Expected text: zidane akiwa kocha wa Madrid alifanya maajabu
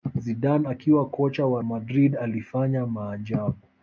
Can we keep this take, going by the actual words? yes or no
yes